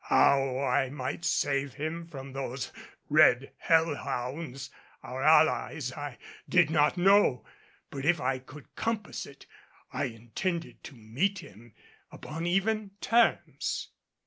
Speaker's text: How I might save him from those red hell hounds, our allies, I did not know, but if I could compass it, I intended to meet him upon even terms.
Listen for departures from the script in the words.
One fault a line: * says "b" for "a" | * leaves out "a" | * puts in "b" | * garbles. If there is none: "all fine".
all fine